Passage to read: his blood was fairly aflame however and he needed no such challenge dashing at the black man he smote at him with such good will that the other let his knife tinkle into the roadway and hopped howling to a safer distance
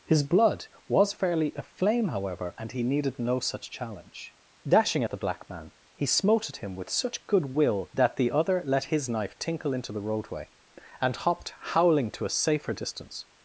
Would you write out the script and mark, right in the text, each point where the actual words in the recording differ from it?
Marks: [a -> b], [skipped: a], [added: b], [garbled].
his blood was fairly aflame however and he needed no such challenge dashing at the black man he smote at him with such good will that the other let his knife tinkle into the roadway and hopped howling to a safer distance